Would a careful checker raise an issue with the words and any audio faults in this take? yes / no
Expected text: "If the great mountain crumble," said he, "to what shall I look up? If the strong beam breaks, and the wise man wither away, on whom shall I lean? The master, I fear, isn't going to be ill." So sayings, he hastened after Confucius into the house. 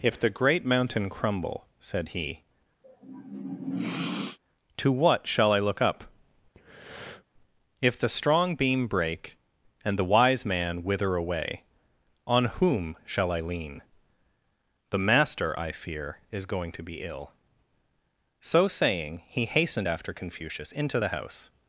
yes